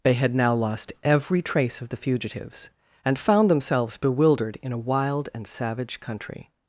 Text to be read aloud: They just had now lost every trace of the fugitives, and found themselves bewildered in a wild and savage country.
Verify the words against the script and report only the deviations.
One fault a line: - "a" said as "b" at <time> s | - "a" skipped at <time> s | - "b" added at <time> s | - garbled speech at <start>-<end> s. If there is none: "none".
- "just" skipped at 0.1 s